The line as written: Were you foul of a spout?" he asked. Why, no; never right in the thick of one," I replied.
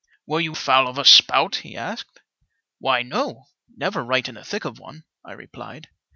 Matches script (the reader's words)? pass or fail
pass